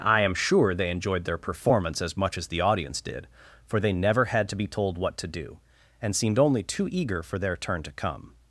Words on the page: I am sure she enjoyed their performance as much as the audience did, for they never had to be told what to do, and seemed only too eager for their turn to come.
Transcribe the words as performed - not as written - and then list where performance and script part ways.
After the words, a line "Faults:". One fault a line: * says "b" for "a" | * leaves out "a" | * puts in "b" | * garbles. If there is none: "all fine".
I am sure they enjoyed their performance as much as the audience did, for they never had to be told what to do, and seemed only too eager for their turn to come.
Faults:
* says "they" for "she"